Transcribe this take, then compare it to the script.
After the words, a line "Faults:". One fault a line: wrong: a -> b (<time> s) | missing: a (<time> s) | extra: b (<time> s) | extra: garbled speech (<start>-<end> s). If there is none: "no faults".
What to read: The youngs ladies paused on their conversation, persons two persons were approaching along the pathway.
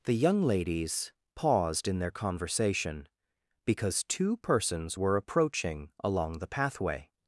The young ladies paused in their conversation, because two persons were approaching along the pathway.
Faults:
wrong: youngs -> young (0.1 s)
wrong: on -> in (1.9 s)
wrong: persons -> because (3.6 s)